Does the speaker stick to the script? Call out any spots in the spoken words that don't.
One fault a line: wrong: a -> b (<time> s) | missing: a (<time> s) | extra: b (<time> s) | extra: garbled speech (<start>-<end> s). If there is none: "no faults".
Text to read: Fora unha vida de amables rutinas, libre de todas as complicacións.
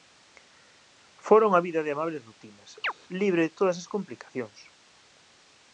no faults